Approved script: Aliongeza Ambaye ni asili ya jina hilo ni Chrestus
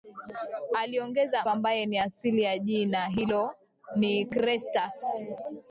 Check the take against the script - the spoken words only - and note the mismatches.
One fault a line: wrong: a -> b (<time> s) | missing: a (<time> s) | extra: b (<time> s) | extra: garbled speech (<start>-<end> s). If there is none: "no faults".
no faults